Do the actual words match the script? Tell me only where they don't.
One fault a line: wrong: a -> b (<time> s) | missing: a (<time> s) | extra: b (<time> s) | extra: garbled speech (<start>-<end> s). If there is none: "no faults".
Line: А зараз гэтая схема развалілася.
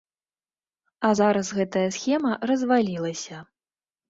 no faults